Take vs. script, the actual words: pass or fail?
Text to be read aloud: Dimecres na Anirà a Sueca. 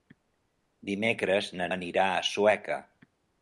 pass